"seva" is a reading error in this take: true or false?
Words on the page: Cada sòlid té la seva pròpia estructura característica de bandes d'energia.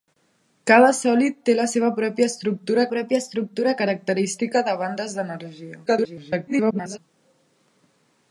false